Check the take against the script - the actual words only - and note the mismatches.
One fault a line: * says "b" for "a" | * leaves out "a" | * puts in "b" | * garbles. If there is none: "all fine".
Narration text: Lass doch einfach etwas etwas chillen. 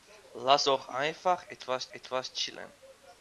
all fine